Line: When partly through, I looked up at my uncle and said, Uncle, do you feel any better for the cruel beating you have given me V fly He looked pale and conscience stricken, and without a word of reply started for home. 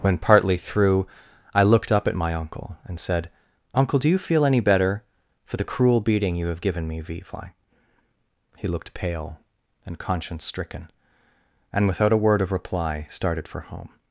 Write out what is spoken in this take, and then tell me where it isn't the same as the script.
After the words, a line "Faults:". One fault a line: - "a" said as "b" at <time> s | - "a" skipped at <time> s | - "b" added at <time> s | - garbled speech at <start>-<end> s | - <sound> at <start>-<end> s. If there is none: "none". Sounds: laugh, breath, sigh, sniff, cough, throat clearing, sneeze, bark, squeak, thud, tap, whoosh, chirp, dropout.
When partly through, I looked up at my uncle and said, Uncle, do you feel any better for the cruel beating you have given me V fly He looked pale and conscience stricken, and without a word of reply started for home.
Faults:
none